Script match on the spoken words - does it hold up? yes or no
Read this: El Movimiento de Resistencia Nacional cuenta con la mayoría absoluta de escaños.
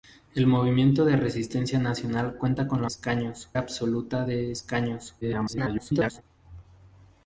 no